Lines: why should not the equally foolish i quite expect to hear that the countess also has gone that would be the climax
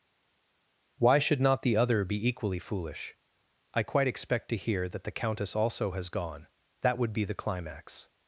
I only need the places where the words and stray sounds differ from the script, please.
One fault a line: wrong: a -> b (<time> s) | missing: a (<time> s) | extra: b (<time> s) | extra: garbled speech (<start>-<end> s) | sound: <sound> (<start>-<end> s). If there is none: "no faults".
extra: other be (1.8 s)